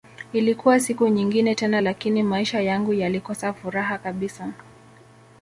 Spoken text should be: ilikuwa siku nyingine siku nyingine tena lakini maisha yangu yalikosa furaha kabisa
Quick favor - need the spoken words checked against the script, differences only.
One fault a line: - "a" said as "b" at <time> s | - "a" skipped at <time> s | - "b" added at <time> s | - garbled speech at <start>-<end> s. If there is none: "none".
- "siku nyingine" skipped at 1.6 s